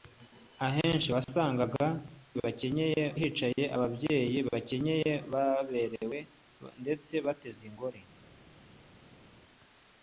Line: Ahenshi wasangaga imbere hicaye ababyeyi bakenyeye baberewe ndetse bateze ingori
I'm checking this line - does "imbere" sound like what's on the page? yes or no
no